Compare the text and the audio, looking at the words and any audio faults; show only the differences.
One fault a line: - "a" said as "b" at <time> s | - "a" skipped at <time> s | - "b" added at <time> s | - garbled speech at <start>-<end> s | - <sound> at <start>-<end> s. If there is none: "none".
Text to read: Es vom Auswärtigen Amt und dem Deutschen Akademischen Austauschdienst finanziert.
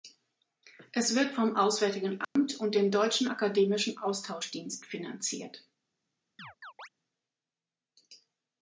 - "wird" added at 1.1 s
- dropout at 2.2-2.4 s
- chirp at 6.4-6.9 s